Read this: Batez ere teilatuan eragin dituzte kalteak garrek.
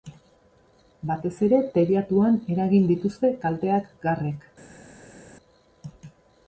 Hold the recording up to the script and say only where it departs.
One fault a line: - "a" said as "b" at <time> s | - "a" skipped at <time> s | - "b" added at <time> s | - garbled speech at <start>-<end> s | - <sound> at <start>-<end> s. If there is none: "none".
none